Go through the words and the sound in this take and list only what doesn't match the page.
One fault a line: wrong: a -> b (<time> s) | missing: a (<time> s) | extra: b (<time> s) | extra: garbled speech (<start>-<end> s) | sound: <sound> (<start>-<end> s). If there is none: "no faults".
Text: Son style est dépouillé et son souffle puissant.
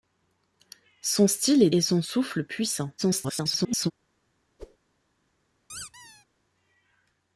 missing: dépouillé (1.7 s)
extra: garbled speech (3.0-3.9 s)
sound: whoosh (4.6-4.8 s)
sound: squeak (5.7-6.3 s)